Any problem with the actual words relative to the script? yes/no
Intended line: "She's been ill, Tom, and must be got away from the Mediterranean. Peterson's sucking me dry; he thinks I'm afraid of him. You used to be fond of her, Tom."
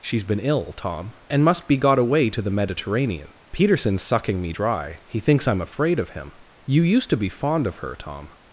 yes